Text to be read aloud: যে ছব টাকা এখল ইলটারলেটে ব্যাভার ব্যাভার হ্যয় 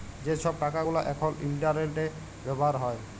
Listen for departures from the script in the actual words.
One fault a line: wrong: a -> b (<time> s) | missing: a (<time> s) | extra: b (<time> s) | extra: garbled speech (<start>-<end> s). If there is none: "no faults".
extra: গুলা (0.8 s)
missing: ব্যাভার (2.7 s)